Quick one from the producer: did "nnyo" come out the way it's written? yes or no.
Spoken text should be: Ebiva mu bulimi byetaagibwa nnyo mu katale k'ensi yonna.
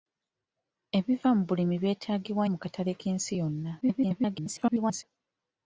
no